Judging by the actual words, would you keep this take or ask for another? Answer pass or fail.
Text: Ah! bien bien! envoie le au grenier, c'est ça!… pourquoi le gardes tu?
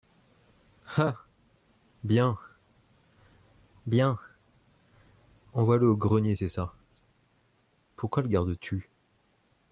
pass